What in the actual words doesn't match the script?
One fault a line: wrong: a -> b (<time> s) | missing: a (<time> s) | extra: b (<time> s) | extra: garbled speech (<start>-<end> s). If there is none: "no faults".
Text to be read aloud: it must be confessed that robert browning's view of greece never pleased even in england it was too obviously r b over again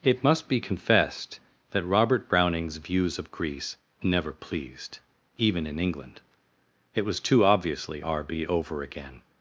wrong: view -> views (2.8 s)